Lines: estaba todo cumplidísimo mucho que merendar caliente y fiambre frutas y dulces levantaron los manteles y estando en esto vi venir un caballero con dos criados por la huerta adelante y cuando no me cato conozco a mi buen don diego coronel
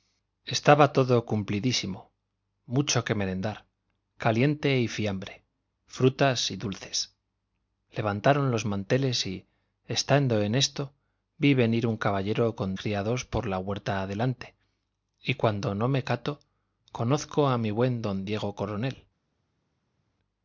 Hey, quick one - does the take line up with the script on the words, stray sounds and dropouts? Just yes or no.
no